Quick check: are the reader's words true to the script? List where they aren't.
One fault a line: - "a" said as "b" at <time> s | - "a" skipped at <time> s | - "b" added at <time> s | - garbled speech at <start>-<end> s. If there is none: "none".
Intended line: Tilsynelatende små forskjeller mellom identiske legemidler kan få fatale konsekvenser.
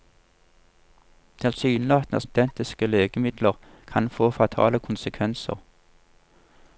- "små forskjeller mellom" skipped at 2.2 s